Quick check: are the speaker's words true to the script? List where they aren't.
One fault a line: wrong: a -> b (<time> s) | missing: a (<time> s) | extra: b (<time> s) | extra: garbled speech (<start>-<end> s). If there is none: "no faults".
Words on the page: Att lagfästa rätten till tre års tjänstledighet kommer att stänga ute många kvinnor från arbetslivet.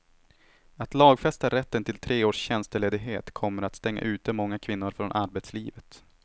no faults